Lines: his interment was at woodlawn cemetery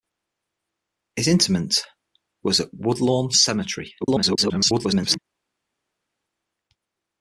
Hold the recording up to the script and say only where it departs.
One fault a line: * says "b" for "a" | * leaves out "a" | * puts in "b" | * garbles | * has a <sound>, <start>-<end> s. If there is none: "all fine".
* garbles